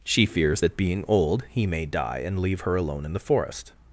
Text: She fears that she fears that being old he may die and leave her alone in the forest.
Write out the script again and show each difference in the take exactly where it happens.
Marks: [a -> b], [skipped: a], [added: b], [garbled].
She fears that [skipped: she fears that] being old he may die and leave her alone in the forest.